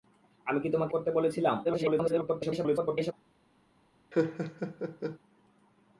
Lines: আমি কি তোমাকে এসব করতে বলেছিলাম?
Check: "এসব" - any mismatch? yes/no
yes